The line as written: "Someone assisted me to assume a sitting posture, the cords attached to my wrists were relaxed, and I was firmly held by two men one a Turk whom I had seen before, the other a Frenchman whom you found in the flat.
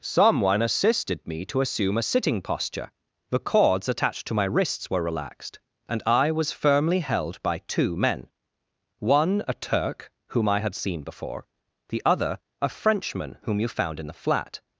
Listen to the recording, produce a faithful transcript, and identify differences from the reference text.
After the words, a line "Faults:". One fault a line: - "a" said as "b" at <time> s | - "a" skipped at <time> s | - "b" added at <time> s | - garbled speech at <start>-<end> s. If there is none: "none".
"Someone assisted me to assume a sitting posture, the cords attached to my wrists were relaxed, and I was firmly held by two men one a Turk whom I had seen before, the other a Frenchman whom you found in the flat.
Faults:
none